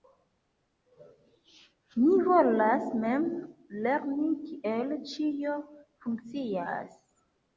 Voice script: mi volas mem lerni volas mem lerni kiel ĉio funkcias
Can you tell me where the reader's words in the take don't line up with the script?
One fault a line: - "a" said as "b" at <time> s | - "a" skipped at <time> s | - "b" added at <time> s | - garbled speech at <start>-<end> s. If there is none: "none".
- "volas mem lerni" skipped at 4.3 s